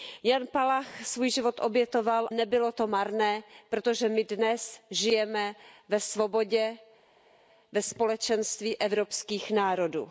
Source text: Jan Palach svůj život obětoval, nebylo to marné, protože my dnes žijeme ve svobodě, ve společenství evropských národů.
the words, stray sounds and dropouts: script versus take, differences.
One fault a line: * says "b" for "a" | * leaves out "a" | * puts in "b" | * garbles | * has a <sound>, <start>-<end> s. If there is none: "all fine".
all fine